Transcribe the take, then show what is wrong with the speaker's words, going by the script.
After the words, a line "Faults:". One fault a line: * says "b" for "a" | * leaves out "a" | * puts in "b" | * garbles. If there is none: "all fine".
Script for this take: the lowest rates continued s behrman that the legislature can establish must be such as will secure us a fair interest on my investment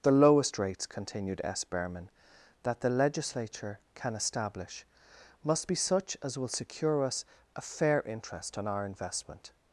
the lowest rates continued s behrman that the legislature can establish must be such as will secure us a fair interest on our investment
Faults:
* says "our" for "my"